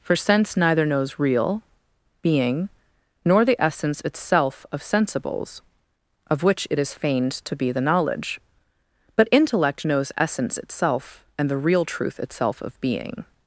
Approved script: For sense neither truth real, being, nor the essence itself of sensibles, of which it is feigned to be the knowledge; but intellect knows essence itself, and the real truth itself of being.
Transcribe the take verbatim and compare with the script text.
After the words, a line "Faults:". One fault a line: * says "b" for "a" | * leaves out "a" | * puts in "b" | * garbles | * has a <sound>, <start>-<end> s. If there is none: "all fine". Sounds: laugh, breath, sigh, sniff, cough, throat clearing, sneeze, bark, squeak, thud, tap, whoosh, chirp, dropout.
For sense neither knows real, being, nor the essence itself of sensibles, of which it is feigned to be the knowledge; but intellect knows essence itself, and the real truth itself of being.
Faults:
* says "knows" for "truth"